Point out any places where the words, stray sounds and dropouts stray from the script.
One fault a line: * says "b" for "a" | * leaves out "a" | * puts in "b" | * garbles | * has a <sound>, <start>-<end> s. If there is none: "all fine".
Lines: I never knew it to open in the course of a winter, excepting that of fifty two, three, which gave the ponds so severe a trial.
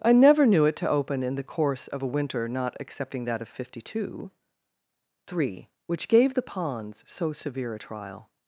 * puts in "not"